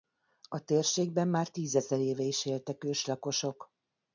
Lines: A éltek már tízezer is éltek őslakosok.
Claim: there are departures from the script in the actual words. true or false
true